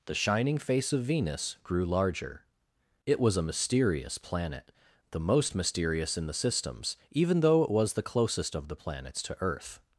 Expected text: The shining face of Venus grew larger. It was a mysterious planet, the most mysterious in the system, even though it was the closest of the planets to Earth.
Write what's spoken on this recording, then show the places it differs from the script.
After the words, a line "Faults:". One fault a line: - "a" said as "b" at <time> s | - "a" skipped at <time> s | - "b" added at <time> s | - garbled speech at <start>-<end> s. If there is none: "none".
The shining face of Venus grew larger. It was a mysterious planet, the most mysterious in the systems, even though it was the closest of the planets to Earth.
Faults:
- "system" said as "systems" at 6.3 s